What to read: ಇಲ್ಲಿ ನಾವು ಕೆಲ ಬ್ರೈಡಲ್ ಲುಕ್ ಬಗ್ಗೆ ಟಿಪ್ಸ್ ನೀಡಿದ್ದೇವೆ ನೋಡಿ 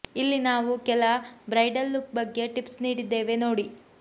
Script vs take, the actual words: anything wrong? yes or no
no